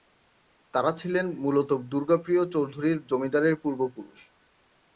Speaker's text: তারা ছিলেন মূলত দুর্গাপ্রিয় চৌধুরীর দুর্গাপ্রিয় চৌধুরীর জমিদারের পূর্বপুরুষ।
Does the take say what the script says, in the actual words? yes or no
no